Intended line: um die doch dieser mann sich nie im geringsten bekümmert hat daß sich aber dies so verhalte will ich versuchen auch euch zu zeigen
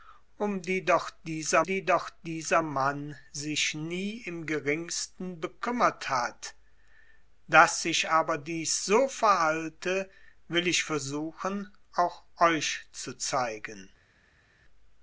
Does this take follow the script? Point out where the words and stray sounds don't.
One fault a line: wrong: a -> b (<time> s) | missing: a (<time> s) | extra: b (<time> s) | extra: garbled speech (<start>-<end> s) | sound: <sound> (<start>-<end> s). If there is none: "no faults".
extra: die doch dieser (1.6 s)